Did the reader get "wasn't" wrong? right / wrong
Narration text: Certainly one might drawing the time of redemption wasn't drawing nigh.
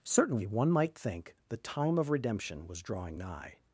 wrong